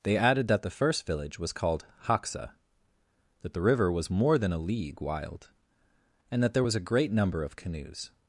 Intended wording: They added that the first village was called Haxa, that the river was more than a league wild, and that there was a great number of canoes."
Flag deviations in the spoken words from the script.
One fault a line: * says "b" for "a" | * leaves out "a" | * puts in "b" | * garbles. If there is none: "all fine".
all fine